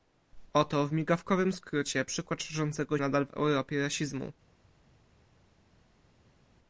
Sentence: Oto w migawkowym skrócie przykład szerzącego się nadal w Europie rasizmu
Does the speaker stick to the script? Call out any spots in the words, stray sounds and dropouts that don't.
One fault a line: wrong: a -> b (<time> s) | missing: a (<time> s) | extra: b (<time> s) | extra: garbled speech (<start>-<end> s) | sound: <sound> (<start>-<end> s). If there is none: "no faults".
missing: się (3.0 s)